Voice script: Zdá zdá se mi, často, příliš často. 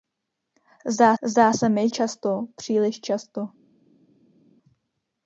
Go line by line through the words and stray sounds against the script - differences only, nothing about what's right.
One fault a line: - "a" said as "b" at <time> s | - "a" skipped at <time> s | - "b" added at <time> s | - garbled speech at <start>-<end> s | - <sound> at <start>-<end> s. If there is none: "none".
none